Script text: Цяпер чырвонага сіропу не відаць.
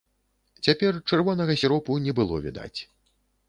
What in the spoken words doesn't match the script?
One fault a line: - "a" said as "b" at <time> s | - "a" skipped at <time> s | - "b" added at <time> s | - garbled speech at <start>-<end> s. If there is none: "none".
- "было" added at 2.2 s